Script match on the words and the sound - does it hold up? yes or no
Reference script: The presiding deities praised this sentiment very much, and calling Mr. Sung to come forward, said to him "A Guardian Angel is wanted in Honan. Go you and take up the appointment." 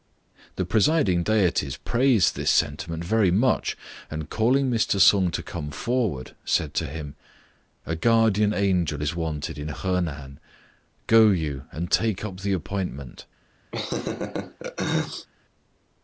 no